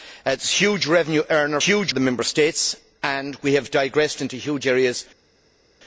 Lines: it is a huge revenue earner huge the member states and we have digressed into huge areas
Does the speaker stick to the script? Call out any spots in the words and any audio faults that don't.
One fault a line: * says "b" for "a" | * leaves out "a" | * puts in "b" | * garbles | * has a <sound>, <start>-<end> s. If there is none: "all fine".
all fine